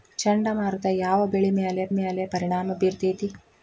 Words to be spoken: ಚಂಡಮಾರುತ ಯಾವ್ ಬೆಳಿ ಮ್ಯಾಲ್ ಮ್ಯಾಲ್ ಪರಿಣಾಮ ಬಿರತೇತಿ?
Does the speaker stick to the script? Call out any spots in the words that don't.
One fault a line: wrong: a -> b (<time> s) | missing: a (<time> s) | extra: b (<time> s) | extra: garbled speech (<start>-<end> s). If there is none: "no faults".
no faults